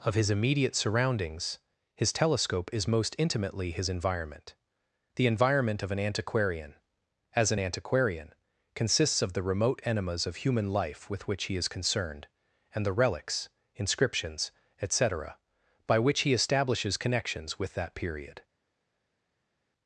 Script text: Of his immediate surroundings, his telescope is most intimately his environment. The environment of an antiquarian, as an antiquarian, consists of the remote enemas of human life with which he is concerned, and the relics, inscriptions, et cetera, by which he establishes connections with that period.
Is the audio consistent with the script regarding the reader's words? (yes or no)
yes